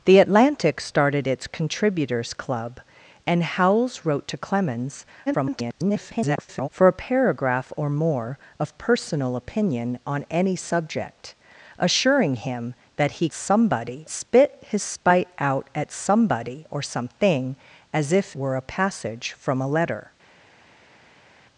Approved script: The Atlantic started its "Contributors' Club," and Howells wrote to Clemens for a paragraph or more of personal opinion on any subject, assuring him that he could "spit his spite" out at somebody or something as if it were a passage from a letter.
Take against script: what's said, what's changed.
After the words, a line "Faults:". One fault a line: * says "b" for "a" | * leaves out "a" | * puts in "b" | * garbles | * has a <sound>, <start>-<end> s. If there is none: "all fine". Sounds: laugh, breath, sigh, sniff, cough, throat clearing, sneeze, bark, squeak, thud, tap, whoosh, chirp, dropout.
The Atlantic started its "Contributors' Club," and Howells wrote to Clemens [garbled] for a paragraph or more of personal opinion on any subject, assuring him that he somebody "spit his spite" out at somebody or something as if were a passage from a letter.
Faults:
* garbles
* says "somebody" for "could"
* leaves out "it"